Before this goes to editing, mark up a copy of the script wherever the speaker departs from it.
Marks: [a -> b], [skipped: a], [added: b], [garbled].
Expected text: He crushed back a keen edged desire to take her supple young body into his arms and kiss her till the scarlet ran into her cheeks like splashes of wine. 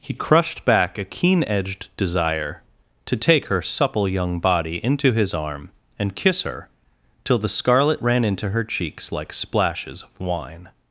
He crushed back a keen edged desire to take her supple young body into his [arms -> arm] and kiss her till the scarlet ran into her cheeks like splashes of wine.